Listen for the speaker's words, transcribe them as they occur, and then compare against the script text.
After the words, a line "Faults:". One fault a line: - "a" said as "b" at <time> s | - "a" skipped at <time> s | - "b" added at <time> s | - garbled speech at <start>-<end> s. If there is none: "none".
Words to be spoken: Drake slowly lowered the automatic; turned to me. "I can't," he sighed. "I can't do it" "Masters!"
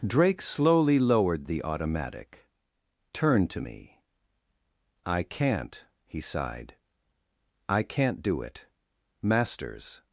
Drake slowly lowered the automatic; turned to me. "I can't," he sighed. "I can't do it" "Masters!"
Faults:
none